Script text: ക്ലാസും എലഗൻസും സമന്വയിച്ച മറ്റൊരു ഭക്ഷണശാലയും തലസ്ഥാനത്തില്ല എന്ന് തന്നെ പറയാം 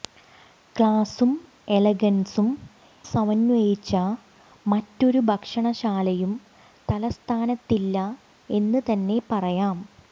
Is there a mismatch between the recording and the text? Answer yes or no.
no